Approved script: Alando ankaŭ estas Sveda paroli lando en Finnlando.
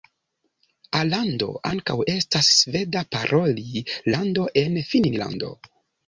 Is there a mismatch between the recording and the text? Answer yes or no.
no